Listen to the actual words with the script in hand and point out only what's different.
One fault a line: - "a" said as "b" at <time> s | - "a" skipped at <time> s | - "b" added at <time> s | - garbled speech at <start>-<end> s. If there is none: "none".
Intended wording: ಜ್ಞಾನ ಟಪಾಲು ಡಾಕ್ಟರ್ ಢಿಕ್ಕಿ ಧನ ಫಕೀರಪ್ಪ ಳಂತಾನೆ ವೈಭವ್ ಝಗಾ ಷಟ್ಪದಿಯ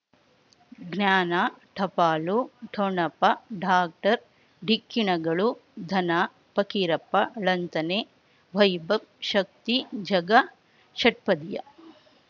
- "ಠೊಣಪ" added at 2.7 s
- "ಣಗಳು" added at 5.1 s
- "ಶಕ್ತಿ" added at 9.3 s